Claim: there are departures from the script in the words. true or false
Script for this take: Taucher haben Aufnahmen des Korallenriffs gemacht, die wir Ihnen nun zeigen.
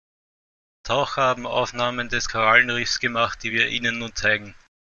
false